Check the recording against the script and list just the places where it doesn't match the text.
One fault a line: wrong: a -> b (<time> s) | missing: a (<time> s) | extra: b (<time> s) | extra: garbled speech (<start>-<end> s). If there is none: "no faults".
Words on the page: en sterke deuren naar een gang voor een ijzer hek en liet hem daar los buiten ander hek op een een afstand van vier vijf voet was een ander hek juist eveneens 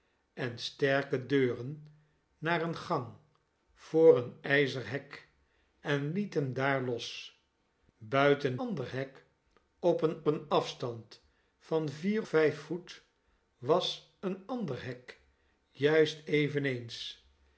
no faults